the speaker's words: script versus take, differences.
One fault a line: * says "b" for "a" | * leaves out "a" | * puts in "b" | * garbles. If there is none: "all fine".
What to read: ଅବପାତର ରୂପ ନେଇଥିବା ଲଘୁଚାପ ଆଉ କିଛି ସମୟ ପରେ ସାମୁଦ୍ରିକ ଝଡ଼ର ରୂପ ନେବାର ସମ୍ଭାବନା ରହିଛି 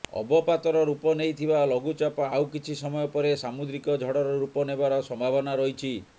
all fine